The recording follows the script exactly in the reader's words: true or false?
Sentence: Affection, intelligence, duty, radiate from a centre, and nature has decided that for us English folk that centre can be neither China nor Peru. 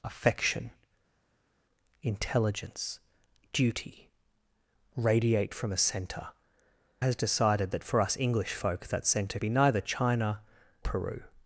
false